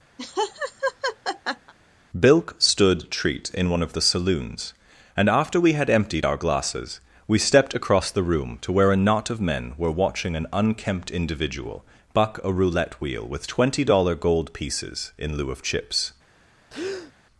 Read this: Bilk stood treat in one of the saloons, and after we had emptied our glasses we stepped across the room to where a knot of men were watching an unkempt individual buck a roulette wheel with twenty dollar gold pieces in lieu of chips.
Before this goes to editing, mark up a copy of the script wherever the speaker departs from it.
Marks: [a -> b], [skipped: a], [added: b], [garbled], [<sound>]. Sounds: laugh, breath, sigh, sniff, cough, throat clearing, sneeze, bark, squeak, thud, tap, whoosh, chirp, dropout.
[laugh] Bilk stood treat in one of the saloons, and after we had emptied our glasses we stepped across the room to where a knot of men were watching an unkempt individual buck a roulette wheel with twenty dollar gold pieces in lieu of chips. [breath]